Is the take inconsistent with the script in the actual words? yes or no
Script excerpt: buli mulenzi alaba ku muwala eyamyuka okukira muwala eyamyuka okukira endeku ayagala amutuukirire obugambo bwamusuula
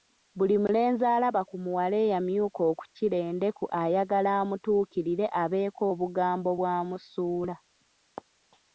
yes